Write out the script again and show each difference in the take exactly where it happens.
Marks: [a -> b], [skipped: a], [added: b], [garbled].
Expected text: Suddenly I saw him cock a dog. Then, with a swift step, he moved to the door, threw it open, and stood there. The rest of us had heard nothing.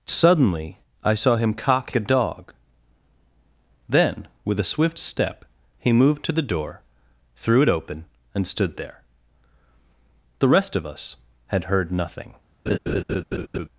Suddenly I saw him cock a dog. Then, with a swift step, he moved to the door, threw it open, and stood there. The rest of us had heard nothing.